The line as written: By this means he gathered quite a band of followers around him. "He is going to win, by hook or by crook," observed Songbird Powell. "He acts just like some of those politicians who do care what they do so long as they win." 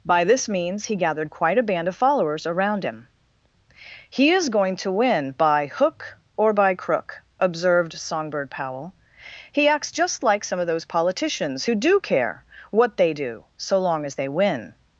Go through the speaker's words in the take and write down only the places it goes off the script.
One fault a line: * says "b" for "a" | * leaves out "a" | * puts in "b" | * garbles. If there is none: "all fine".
all fine